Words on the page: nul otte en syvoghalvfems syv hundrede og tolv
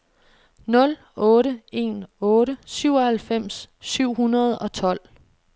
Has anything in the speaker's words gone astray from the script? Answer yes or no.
yes